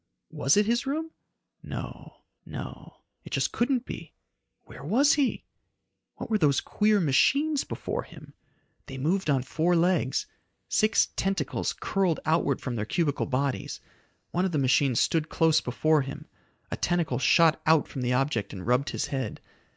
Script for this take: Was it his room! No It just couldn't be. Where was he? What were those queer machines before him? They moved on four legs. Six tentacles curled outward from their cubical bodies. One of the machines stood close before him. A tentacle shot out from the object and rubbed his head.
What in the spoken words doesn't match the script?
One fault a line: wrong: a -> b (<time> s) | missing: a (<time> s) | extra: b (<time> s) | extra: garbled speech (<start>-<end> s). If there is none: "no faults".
extra: no (2.4 s)